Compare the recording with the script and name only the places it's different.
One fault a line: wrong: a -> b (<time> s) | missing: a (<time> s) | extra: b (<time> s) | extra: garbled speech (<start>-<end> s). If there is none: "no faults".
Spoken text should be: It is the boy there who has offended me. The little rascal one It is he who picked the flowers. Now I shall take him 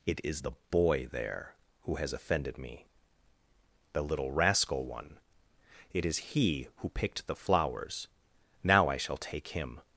no faults